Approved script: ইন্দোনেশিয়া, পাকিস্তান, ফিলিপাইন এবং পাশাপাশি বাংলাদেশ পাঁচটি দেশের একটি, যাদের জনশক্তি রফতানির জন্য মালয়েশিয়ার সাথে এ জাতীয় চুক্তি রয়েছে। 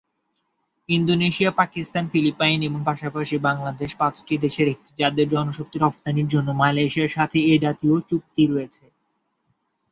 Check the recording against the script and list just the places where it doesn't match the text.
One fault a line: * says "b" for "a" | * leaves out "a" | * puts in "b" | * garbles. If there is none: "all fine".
all fine